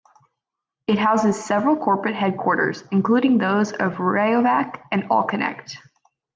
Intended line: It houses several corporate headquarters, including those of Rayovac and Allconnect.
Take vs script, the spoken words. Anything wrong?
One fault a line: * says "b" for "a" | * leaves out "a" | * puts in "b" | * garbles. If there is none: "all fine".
all fine